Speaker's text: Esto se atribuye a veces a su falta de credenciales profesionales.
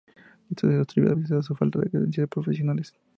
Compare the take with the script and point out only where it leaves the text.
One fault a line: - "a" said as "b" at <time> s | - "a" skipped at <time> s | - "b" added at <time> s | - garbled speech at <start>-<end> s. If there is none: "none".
none